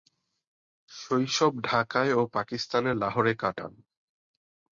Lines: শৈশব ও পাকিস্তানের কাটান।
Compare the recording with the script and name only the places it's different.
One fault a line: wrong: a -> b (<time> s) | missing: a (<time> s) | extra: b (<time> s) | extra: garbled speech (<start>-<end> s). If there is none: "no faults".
extra: ঢাকায় (1.6 s)
extra: লাহোরে (2.9 s)